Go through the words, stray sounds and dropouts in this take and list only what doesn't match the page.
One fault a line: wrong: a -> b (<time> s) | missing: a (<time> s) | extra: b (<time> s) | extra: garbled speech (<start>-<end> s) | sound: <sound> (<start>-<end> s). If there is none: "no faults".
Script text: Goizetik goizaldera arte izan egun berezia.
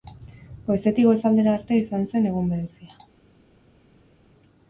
extra: zen (2.1 s)